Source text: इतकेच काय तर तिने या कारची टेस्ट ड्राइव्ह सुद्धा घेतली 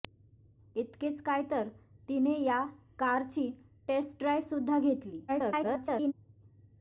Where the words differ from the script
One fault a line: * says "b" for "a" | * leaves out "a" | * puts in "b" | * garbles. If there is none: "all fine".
* garbles